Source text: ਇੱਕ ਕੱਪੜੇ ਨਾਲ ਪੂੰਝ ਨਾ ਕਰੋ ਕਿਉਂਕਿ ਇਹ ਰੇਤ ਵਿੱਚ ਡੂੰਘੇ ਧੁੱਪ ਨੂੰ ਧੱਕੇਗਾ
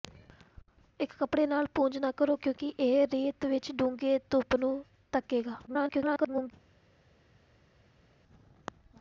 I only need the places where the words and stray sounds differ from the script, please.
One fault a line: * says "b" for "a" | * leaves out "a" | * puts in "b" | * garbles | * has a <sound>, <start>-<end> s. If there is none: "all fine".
* garbles